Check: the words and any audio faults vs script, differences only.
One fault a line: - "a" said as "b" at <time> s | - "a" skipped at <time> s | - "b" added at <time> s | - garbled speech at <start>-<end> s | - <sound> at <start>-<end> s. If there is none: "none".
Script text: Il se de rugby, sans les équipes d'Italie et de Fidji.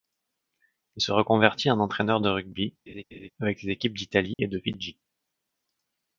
- "reconvertit en entraîneur" added at 1.1 s
- laugh at 2.9-3.3 s
- "sans" said as "avec" at 3.4 s
- dropout at 4.3-4.4 s